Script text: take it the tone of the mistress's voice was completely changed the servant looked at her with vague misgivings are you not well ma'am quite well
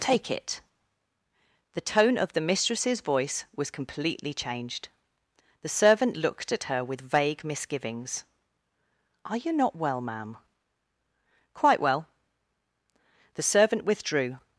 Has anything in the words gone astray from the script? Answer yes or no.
yes